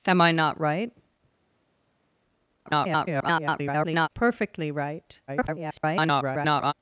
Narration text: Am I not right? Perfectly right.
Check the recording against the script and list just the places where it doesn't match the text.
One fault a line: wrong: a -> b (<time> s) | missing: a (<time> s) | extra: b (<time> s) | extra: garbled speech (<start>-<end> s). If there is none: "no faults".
extra: garbled speech (2.7-4.1 s)
extra: garbled speech (5.3-6.7 s)